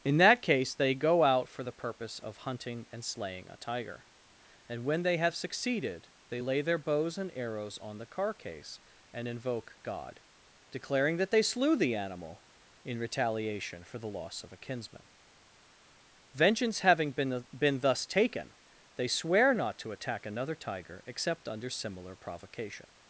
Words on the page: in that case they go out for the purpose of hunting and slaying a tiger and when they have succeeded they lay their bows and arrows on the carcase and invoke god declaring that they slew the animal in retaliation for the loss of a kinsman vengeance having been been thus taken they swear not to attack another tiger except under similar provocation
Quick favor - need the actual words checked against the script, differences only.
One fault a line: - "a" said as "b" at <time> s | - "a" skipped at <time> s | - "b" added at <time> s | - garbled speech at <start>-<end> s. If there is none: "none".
none